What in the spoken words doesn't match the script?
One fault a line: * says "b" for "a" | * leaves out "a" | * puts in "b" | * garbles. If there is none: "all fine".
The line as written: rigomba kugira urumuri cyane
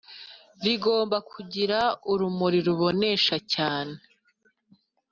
* puts in "rubonesha"